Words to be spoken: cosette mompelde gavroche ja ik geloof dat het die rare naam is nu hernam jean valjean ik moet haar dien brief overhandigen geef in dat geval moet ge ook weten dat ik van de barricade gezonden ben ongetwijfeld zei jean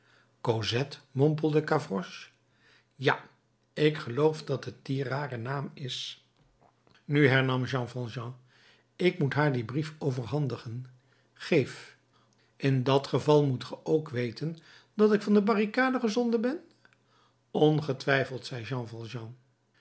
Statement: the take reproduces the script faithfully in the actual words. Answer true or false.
true